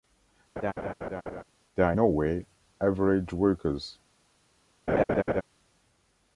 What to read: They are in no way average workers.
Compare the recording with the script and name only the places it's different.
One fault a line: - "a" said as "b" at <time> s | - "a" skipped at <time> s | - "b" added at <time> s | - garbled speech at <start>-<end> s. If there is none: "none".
- "in" skipped at 1.9 s